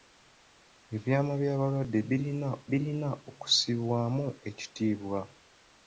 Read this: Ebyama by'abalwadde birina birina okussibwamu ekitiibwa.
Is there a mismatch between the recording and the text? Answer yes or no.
no